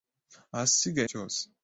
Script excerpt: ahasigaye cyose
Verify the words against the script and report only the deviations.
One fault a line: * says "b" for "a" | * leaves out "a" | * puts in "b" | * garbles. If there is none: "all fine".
all fine